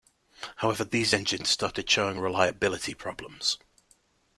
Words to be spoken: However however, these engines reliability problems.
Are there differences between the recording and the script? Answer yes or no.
yes